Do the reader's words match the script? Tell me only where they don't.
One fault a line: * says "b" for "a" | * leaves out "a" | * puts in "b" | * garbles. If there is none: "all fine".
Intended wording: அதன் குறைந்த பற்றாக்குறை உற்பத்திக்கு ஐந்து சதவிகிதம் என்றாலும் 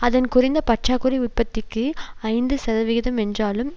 all fine